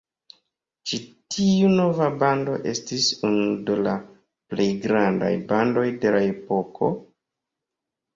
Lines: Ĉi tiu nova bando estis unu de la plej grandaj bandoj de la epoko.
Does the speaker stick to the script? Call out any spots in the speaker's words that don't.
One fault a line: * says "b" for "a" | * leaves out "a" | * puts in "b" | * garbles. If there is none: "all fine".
all fine